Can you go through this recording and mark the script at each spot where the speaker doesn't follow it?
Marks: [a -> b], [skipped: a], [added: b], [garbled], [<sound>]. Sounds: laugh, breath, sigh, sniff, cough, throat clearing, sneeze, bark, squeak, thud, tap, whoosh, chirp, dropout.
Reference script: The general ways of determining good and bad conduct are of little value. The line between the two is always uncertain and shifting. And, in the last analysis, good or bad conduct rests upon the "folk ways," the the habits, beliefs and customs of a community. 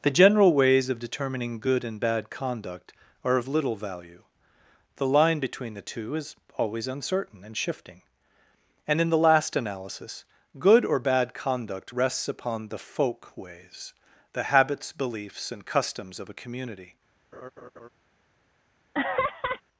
The general ways of determining good and bad conduct are of little value. The line between the two is always uncertain and shifting. And, in the last analysis, good or bad conduct rests upon the "folk ways," the [skipped: the] habits, beliefs and customs of a community. [laugh] [laugh]